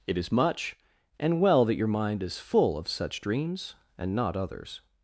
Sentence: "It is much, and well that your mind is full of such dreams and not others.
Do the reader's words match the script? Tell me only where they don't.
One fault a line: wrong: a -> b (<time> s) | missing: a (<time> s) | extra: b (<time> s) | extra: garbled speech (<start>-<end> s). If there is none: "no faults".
no faults